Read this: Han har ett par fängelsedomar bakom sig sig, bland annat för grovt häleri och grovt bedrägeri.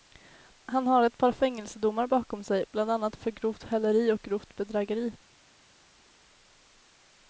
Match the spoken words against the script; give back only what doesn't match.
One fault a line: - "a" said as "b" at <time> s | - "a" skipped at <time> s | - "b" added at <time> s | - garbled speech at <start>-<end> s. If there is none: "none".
- "sig" skipped at 2.7 s